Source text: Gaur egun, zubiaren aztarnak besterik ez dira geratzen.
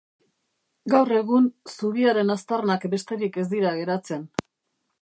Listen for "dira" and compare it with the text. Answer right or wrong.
right